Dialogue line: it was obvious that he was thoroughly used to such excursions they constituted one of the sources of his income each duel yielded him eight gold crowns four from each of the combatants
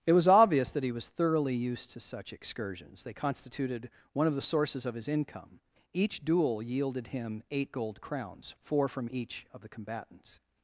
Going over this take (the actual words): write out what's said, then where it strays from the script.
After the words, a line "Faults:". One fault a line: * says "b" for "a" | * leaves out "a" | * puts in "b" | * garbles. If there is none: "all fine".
it was obvious that he was thoroughly used to such excursions they constituted one of the sources of his income each duel yielded him eight gold crowns four from each of the combatants
Faults:
all fine